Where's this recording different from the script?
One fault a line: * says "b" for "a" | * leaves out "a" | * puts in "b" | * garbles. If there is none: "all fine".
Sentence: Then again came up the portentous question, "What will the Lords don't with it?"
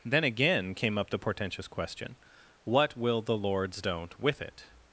all fine